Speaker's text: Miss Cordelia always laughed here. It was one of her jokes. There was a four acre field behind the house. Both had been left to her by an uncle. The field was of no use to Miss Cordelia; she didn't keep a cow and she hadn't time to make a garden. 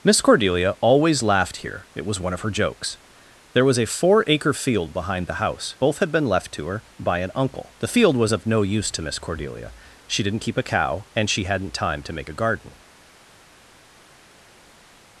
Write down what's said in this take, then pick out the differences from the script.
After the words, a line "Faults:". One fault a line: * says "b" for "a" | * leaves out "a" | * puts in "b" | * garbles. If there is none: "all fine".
Miss Cordelia always laughed here. It was one of her jokes. There was a four acre field behind the house. Both had been left to her by an uncle. The field was of no use to Miss Cordelia; she didn't keep a cow and she hadn't time to make a garden.
Faults:
all fine